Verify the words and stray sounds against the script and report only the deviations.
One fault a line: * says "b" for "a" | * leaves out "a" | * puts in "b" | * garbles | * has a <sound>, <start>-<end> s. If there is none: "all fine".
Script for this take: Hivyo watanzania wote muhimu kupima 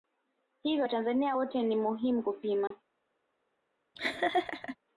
* puts in "ni"
* has a dropout, 2.7-2.7 s
* has a laugh, 3.9-4.8 s